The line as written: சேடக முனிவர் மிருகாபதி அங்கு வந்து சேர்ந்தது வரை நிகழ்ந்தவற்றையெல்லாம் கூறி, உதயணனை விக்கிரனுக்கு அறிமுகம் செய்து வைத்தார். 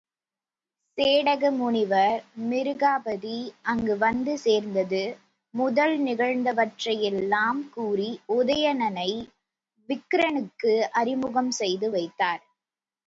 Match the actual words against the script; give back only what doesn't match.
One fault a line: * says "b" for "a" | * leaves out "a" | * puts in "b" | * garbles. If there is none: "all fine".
* says "முதல்" for "வரை"